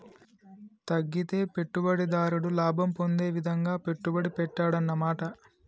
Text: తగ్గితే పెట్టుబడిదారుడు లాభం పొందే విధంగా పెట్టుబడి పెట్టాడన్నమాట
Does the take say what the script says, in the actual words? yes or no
yes